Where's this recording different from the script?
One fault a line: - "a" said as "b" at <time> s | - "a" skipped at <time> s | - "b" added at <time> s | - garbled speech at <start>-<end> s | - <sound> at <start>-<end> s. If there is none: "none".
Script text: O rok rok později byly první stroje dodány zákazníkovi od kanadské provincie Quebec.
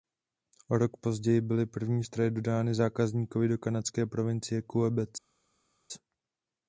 - "rok" skipped at 0.9 s
- "od" said as "do" at 3.5 s